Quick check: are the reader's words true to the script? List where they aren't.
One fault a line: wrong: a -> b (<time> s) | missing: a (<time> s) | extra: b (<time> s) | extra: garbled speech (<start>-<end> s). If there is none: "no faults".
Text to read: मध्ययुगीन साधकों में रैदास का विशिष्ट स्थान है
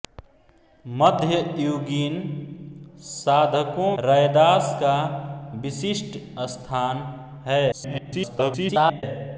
missing: में (4.0 s)
extra: garbled speech (7.7-9.0 s)